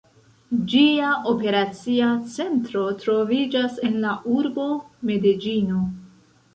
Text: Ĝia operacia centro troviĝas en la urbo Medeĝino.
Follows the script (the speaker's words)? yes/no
yes